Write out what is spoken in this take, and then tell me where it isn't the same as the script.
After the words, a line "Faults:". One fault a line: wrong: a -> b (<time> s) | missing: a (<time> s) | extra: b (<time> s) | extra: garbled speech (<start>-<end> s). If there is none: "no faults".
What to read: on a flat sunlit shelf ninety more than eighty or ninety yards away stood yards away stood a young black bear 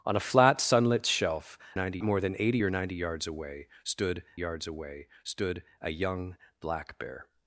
on a flat sunlit shelf ninety more than eighty or ninety yards away stood yards away stood a young black bear
Faults:
no faults